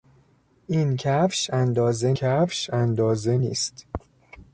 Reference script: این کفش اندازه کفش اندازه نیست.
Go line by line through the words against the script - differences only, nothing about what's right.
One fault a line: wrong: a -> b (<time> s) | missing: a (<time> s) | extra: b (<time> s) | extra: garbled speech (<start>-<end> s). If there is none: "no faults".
no faults